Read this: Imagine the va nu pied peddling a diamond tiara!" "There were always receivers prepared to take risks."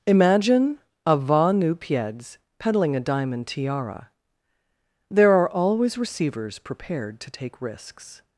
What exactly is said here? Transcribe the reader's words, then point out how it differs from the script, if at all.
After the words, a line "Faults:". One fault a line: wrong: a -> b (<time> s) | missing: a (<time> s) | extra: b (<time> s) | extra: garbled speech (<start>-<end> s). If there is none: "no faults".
Imagine a va nu pieds peddling a diamond tiara!" "There are always receivers prepared to take risks."
Faults:
wrong: the -> a (1.0 s)
wrong: pied -> pieds (1.7 s)
wrong: were -> are (5.3 s)